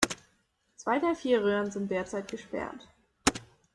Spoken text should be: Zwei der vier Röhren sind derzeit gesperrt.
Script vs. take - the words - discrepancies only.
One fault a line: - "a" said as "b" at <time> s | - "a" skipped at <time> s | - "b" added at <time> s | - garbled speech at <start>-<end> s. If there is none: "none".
none